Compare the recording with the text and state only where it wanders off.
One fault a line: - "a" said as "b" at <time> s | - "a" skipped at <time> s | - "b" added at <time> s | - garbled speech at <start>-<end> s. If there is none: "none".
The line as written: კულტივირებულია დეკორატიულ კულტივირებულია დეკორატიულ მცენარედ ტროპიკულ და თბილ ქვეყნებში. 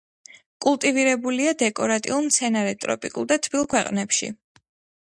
- "კულტივირებულია დეკორატიულ" skipped at 2.3 s